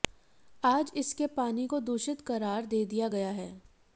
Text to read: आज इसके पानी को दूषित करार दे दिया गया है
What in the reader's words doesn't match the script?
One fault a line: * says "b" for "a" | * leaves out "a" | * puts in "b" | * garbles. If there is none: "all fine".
all fine